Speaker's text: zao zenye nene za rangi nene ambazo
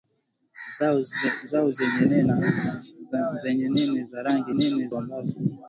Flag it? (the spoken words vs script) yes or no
no